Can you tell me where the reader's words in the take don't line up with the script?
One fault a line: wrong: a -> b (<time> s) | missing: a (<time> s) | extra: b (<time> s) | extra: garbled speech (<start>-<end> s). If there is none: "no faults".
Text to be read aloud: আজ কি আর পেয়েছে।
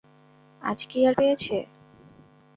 no faults